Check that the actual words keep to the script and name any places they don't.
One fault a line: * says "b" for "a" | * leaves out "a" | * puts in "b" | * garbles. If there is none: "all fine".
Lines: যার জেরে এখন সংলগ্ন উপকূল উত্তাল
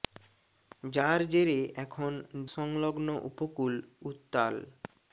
all fine